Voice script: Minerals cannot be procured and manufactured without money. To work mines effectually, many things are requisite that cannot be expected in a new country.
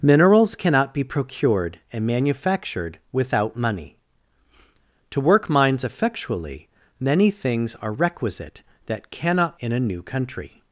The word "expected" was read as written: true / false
false